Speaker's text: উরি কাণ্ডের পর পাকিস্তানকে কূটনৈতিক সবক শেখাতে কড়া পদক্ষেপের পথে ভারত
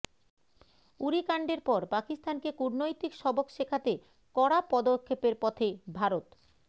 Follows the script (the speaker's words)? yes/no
yes